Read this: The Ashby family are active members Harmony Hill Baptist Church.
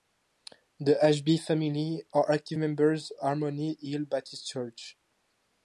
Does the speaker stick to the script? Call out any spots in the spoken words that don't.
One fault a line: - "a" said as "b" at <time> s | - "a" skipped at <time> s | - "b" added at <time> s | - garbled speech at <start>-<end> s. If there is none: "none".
none